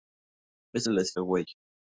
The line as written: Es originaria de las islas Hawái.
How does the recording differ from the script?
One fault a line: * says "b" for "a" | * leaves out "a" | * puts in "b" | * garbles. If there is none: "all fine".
* leaves out "originaria"
* leaves out "islas"